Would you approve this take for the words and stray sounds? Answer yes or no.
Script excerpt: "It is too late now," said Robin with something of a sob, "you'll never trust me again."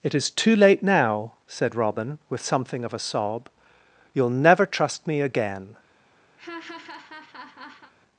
no